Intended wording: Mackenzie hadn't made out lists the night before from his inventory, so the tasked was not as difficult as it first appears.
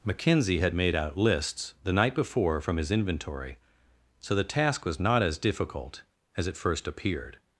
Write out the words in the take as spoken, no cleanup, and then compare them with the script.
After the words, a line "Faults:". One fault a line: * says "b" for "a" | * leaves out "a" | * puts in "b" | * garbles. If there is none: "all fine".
Mackenzie had made out lists the night before from his inventory, so the task was not as difficult as it first appeared.
Faults:
* says "had" for "hadn't"
* says "task" for "tasked"
* says "appeared" for "appears"